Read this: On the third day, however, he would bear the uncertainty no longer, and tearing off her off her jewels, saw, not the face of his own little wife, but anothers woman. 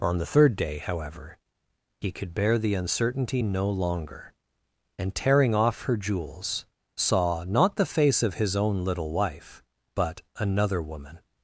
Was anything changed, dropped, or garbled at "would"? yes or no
yes